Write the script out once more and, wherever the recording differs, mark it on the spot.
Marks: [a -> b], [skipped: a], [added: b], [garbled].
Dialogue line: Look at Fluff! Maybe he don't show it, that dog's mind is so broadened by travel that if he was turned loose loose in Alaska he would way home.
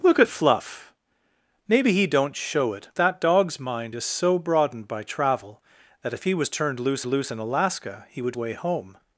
Look at Fluff! Maybe he don't show it, that dog's mind is so broadened by travel that if he was turned loose loose in Alaska he would way home.